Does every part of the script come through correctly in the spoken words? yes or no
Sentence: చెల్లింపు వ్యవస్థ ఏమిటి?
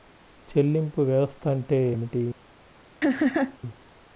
no